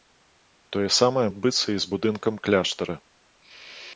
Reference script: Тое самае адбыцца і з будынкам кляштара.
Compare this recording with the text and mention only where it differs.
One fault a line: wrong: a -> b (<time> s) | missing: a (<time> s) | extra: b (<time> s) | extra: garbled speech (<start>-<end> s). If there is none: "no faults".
no faults